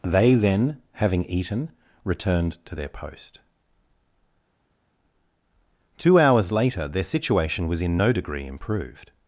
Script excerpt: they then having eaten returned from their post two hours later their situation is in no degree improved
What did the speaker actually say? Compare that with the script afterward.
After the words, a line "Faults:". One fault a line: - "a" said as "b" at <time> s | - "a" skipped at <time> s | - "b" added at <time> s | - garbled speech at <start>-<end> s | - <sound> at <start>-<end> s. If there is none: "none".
they then having eaten returned to their post two hours later their situation was in no degree improved
Faults:
- "from" said as "to" at 2.6 s
- "is" said as "was" at 7.7 s